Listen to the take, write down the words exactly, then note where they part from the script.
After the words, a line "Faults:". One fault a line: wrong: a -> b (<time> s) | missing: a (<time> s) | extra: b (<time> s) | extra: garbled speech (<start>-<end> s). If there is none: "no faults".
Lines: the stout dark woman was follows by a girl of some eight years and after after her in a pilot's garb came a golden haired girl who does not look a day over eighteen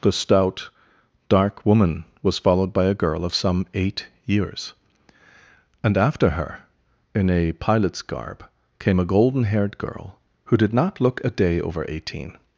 the stout dark woman was followed by a girl of some eight years and after her in a pilot's garb came a golden haired girl who did not look a day over eighteen
Faults:
wrong: follows -> followed (2.4 s)
missing: after (6.3 s)
wrong: does -> did (10.6 s)